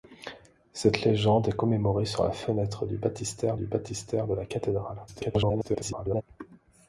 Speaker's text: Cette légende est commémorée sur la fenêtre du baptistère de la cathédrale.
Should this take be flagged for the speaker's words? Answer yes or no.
yes